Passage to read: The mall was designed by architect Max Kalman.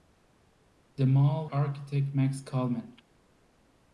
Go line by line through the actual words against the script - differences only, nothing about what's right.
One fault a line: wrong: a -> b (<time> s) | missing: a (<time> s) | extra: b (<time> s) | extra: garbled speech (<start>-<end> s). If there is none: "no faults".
missing: was designed by (1.5 s)